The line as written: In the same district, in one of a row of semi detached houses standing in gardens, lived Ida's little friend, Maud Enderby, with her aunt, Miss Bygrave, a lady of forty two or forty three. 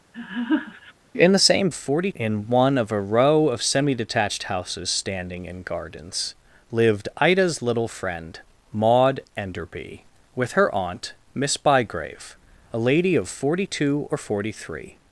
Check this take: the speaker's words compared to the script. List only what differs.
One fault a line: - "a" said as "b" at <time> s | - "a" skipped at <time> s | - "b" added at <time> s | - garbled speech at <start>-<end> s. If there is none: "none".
- "district" said as "forty" at 1.7 s